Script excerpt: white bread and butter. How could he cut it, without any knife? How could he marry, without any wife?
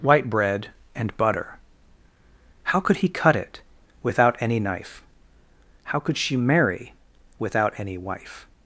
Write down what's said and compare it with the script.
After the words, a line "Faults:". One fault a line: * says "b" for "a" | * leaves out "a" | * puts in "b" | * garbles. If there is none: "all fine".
white bread and butter. How could he cut it, without any knife? How could she marry, without any wife?
Faults:
* says "she" for "he"